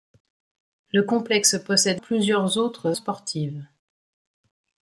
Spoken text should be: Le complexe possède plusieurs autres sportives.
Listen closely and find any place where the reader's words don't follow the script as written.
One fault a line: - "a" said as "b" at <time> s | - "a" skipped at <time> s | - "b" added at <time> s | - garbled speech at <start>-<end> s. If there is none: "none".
none